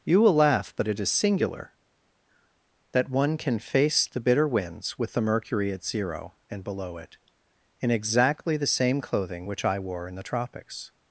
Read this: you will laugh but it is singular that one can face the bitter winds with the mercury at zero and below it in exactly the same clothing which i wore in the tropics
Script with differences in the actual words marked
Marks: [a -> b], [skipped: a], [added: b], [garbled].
you will laugh but it is singular that one can face the bitter winds with the mercury at zero and below it in exactly the same clothing which i wore in the tropics